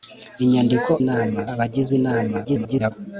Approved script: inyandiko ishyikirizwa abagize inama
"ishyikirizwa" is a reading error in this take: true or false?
true